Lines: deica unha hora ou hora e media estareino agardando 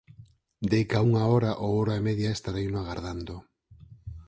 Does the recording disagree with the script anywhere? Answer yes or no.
no